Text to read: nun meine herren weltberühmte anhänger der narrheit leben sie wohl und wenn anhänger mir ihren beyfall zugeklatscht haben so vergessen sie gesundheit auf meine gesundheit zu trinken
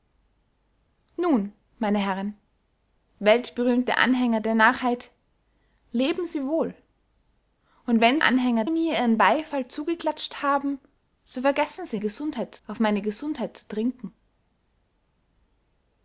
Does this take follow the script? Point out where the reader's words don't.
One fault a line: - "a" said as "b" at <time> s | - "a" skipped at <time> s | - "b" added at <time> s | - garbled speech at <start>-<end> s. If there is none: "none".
none